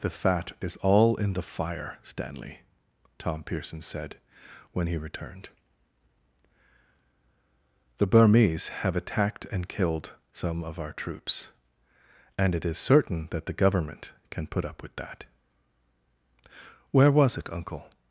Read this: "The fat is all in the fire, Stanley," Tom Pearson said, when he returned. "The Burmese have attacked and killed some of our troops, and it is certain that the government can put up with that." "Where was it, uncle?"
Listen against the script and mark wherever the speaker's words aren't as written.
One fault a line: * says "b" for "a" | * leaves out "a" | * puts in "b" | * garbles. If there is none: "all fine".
all fine